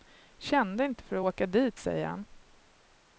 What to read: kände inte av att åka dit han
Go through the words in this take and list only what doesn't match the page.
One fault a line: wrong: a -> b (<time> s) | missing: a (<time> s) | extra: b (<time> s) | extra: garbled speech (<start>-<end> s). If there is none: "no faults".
wrong: av -> för (1.0 s)
extra: säger (1.8 s)